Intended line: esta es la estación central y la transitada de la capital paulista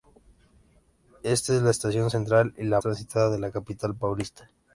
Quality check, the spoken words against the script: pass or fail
pass